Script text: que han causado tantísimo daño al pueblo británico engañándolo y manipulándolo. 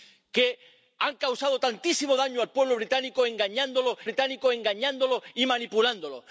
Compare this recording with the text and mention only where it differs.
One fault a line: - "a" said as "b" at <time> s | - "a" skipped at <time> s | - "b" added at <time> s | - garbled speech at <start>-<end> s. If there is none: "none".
- "británico engañándolo" added at 4.0 s